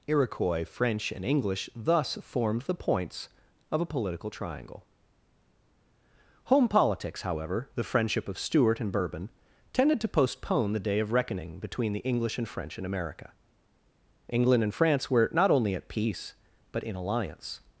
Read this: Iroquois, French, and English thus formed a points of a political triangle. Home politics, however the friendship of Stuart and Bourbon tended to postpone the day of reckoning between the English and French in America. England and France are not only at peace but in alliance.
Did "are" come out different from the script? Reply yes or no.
yes